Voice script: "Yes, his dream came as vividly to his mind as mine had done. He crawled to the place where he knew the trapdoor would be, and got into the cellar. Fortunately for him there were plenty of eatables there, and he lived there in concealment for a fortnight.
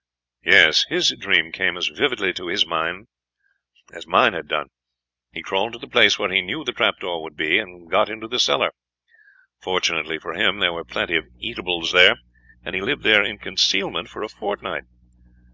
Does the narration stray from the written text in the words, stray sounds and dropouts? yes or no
no